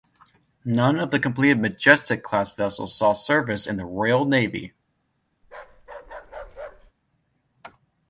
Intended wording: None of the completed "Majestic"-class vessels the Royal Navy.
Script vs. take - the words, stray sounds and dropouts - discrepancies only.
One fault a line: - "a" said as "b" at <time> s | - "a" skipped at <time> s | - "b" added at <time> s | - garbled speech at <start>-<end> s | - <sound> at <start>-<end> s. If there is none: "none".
- "saw service in" added at 3.0 s
- bark at 5.4-6.9 s